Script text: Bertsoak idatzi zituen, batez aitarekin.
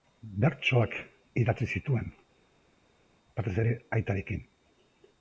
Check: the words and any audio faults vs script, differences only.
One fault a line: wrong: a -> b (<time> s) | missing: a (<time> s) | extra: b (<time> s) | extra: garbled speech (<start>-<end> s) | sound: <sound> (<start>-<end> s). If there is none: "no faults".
extra: ere (3.6 s)